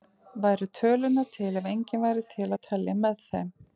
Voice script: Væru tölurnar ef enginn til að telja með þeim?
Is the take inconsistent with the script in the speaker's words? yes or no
yes